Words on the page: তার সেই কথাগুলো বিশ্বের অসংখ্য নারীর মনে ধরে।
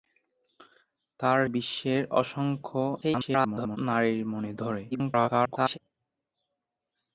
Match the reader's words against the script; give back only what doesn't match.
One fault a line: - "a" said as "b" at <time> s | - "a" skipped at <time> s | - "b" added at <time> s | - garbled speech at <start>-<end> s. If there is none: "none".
- "সেই কথাগুলো" skipped at 1.4 s
- garbled speech at 3.0-3.8 s
- garbled speech at 4.9-5.8 s